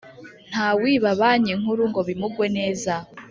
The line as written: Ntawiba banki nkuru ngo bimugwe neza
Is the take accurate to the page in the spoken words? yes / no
yes